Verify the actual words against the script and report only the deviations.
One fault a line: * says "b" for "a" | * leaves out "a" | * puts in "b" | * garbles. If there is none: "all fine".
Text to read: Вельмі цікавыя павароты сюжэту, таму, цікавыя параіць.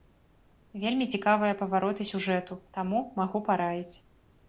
* says "магу" for "цікавыя"